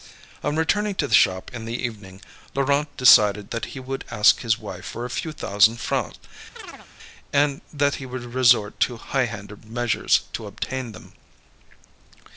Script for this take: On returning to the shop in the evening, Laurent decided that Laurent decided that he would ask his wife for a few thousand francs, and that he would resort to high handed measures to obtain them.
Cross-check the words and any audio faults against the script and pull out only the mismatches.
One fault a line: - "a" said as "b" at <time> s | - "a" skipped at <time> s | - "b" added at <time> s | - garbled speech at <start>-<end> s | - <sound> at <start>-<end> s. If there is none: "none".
- "Laurent decided that" skipped at 3.6 s
- chirp at 6.5-6.9 s